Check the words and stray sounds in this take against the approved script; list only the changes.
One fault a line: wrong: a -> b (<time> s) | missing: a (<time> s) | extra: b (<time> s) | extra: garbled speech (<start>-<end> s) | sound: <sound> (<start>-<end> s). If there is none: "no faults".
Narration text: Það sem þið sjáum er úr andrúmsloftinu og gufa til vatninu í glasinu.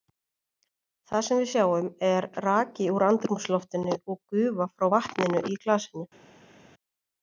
wrong: þið -> við (1.4 s)
extra: raki (2.4 s)
wrong: til -> frá (4.8 s)